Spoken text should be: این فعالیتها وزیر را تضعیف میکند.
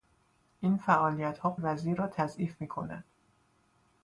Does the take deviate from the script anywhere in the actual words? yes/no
no